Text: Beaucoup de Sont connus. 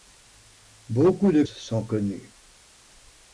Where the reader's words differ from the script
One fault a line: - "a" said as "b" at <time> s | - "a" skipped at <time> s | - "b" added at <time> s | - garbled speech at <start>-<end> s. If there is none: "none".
none